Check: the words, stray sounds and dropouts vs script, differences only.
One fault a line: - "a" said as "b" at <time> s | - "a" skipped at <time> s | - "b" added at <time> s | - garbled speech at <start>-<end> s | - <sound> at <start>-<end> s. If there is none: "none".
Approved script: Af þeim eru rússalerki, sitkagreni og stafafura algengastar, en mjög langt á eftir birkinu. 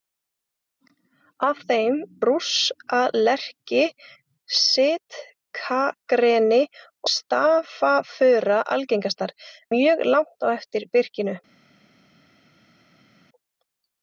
- "eru" skipped at 2.0 s
- "og" skipped at 6.6 s
- "en" skipped at 9.4 s